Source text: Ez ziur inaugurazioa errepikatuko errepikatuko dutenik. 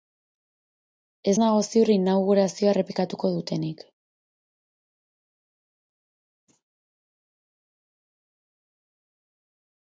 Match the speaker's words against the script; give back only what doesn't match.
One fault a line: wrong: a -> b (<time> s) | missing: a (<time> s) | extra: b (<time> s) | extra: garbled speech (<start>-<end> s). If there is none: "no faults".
extra: nago (1.4 s)
missing: errepikatuko (3.3 s)